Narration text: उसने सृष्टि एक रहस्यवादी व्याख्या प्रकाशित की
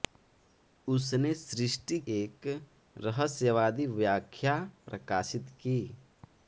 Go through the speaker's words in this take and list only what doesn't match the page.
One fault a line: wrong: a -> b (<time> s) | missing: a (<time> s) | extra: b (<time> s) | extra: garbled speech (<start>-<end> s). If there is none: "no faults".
no faults